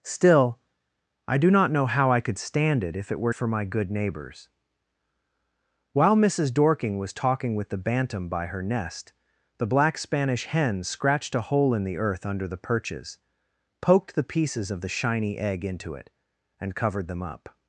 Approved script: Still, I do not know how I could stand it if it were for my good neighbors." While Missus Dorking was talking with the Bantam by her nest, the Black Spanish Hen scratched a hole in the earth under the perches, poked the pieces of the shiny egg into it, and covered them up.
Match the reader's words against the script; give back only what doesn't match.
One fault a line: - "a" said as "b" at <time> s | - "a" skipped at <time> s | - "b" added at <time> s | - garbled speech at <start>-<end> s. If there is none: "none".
none